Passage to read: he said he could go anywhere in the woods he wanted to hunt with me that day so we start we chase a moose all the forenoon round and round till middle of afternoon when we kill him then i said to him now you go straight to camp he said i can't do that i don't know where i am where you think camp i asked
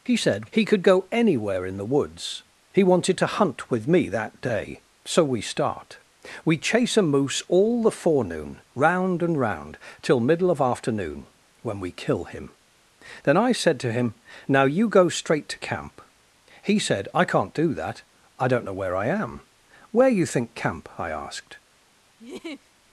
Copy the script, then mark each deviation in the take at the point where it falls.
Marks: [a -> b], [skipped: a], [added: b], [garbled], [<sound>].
he said he could go anywhere in the woods he wanted to hunt with me that day so we start we chase a moose all the forenoon round and round till middle of afternoon when we kill him then i said to him now you go straight to camp he said i can't do that i don't know where i am where you think camp i asked [laugh]